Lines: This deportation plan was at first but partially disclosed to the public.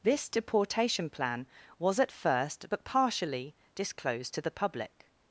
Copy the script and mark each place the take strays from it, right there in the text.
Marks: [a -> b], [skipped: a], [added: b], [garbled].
This deportation plan was at first but partially disclosed to the public.